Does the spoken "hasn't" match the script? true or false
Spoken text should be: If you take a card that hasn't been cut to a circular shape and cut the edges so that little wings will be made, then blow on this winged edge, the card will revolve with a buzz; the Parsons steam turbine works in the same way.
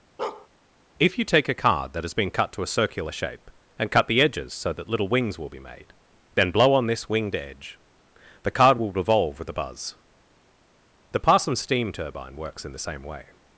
false